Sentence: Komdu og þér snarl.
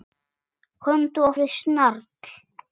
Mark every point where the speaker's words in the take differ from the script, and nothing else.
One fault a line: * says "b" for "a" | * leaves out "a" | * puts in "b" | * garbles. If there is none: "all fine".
all fine